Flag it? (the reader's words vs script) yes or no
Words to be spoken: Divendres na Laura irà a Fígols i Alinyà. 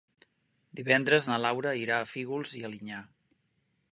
no